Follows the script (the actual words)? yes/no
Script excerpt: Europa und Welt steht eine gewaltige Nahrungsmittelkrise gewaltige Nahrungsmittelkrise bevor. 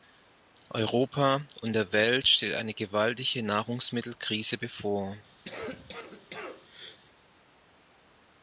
no